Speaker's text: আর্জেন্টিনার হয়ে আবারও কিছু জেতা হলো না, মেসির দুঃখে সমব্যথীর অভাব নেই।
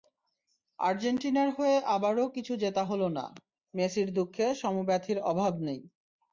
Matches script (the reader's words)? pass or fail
pass